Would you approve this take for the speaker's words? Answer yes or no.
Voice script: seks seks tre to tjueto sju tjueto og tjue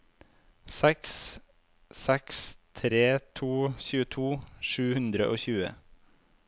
no